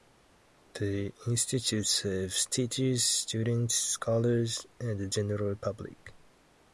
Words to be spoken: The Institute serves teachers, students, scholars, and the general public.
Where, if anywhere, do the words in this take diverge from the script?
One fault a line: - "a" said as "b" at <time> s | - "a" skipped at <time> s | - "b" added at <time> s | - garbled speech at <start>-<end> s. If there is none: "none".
none